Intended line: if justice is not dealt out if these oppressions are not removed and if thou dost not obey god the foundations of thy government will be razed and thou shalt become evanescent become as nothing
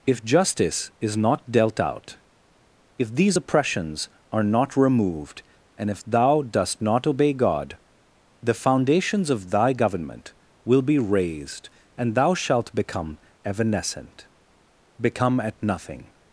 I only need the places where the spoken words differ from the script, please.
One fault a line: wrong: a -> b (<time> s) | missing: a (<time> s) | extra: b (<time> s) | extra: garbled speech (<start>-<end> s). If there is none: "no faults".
wrong: as -> at (15.4 s)